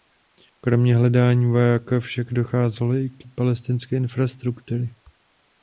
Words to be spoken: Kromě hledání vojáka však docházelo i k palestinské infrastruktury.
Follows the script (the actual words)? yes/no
yes